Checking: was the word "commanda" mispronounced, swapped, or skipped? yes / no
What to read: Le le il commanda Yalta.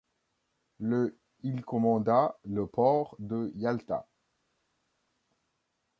yes